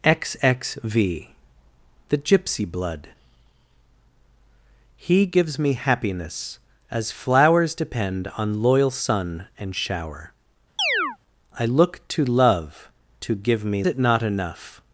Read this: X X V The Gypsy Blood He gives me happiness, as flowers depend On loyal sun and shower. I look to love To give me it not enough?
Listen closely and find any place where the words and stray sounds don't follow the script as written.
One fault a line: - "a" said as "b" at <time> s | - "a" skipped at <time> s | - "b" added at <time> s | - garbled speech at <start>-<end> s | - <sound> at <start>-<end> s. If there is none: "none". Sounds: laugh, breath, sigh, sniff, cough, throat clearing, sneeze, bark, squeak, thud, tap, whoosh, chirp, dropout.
- chirp at 10.8-11.2 s